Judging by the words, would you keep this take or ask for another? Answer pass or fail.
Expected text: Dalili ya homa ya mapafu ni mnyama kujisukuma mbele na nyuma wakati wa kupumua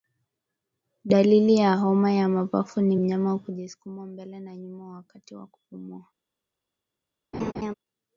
pass